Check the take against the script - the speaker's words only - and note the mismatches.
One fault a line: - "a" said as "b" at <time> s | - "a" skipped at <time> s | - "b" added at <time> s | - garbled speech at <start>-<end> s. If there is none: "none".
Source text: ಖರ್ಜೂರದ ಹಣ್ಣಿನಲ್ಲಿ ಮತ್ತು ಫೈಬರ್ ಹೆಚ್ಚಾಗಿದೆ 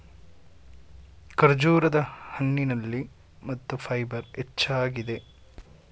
none